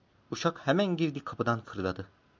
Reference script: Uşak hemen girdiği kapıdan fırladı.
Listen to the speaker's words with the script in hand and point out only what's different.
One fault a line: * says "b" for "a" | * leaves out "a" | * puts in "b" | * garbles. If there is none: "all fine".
all fine